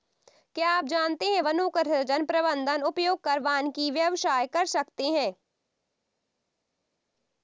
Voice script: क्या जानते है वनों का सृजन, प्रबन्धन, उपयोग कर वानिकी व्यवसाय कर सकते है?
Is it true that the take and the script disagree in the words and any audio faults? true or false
true